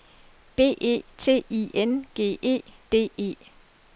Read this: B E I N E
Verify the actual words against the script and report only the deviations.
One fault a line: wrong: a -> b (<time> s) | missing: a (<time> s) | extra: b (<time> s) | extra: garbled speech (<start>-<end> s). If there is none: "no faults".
extra: T (1.1 s)
extra: G E D (2.1 s)